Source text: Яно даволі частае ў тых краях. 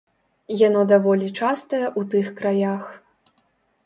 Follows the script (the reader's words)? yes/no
yes